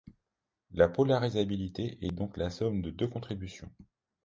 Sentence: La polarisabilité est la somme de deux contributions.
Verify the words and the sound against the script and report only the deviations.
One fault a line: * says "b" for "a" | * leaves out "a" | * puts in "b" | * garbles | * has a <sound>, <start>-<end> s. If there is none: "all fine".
* puts in "donc"